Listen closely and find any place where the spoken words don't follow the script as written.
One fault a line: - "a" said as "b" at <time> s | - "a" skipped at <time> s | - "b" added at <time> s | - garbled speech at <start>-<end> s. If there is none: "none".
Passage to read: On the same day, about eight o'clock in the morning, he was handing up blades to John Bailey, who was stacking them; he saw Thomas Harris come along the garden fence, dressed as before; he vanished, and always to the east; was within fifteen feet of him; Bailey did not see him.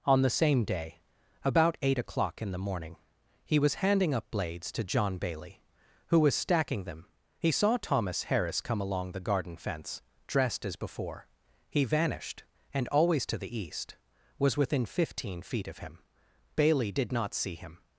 none